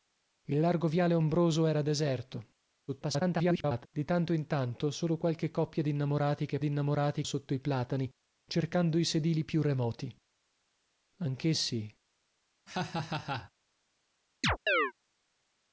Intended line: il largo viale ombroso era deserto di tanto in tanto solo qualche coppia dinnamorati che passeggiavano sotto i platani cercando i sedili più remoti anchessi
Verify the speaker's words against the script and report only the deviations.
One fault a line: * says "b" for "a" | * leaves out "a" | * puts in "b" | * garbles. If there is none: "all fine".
* garbles
* says "dinnamorati" for "passeggiavano"